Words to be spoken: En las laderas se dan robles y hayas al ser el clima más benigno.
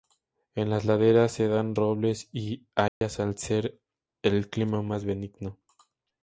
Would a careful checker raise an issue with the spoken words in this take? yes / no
no